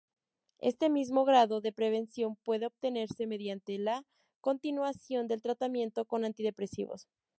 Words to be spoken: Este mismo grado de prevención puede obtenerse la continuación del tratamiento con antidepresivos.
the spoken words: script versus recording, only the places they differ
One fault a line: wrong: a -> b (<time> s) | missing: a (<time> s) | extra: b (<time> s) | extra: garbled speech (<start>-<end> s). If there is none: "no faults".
extra: mediante (3.3 s)